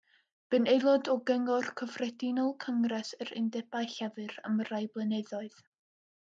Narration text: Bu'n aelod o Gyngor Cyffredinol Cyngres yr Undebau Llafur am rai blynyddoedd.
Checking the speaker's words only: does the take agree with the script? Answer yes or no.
yes